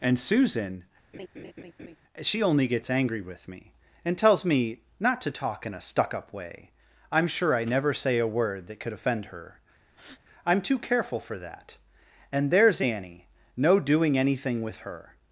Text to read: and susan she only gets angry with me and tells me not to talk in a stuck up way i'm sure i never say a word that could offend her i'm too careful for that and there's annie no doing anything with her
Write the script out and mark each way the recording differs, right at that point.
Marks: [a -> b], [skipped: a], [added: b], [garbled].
and susan she only gets angry with me and tells me not to talk in a stuck up way i'm sure i never say a word that could offend her i'm too careful for that and there's annie no doing anything with her